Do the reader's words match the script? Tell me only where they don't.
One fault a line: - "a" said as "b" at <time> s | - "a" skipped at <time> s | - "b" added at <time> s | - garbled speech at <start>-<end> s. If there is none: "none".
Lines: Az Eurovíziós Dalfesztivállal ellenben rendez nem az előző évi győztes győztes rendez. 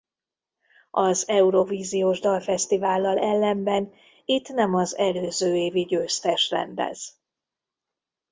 - "rendez" said as "itt" at 4.2 s
- "győztes" skipped at 6.5 s